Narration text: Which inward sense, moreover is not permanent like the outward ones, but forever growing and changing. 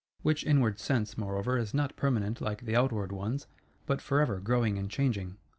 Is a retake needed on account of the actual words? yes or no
no